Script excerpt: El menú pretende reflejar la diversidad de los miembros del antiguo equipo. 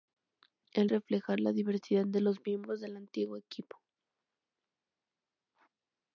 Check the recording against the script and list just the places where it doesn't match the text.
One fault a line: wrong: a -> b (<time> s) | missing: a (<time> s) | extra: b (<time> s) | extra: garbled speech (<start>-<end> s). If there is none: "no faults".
missing: menú pretende (0.9 s)